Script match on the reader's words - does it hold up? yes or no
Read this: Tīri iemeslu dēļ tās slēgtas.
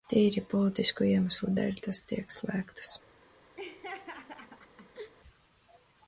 no